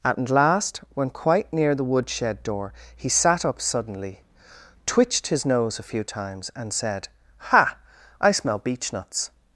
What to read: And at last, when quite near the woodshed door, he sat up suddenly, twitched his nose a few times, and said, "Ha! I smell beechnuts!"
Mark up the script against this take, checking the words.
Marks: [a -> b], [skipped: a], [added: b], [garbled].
[skipped: And] at last, when quite near the woodshed door, he sat up suddenly, twitched his nose a few times, and said, "Ha! I smell beechnuts!"